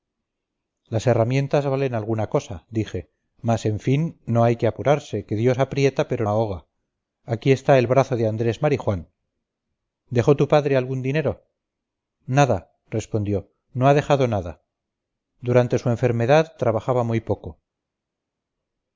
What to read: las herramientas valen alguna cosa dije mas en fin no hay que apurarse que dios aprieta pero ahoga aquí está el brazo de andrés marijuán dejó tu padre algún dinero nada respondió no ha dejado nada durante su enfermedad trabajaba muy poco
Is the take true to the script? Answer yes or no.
yes